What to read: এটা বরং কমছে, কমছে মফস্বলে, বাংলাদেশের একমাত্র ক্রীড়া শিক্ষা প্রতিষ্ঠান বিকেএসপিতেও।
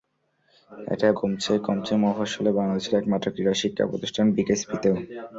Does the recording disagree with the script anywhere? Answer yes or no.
yes